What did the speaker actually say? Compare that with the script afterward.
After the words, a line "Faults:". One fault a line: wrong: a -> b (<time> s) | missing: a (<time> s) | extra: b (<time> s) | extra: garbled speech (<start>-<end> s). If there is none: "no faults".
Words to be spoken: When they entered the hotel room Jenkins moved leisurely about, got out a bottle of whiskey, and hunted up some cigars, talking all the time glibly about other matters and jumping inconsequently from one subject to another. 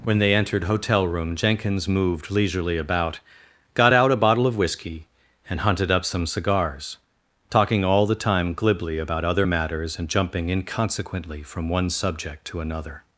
When they entered hotel room Jenkins moved leisurely about, got out a bottle of whiskey, and hunted up some cigars, talking all the time glibly about other matters and jumping inconsequently from one subject to another.
Faults:
missing: the (0.6 s)